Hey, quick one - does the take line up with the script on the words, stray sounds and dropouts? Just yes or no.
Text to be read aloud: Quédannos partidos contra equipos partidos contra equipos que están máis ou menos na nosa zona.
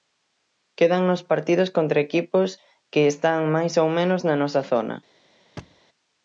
no